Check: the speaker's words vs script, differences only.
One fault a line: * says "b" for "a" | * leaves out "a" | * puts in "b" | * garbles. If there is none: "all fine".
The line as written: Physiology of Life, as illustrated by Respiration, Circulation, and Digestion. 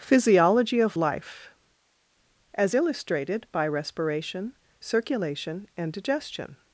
all fine